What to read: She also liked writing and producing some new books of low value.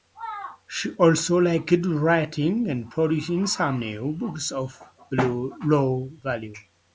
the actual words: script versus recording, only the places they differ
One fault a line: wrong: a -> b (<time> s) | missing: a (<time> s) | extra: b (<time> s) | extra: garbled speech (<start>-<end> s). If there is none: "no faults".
no faults